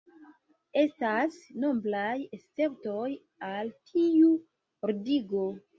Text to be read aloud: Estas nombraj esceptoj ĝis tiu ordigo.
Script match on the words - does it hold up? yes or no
no